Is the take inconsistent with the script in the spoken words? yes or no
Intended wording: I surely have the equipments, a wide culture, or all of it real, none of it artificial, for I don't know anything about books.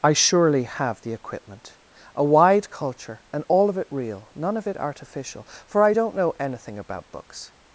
yes